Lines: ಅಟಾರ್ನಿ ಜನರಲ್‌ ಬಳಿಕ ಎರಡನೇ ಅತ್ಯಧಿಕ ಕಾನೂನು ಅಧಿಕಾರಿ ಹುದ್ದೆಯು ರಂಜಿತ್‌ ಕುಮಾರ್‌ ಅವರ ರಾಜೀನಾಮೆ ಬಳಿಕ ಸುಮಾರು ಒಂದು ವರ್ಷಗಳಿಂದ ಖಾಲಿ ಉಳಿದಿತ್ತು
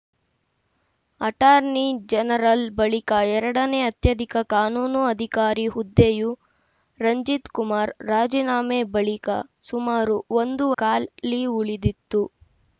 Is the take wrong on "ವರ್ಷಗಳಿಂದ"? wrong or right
wrong